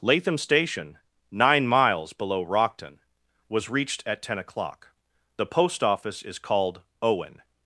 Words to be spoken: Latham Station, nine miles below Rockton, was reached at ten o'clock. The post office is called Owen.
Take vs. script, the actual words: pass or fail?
pass